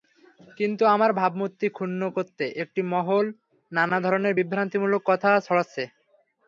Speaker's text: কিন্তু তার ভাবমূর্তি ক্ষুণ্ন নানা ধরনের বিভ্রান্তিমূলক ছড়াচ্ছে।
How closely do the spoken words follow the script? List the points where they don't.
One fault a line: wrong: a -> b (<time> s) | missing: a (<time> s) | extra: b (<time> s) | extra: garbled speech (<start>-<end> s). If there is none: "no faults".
wrong: তার -> আমার (0.8 s)
extra: করতে একটি মহল (2.1 s)
extra: কথা (5.1 s)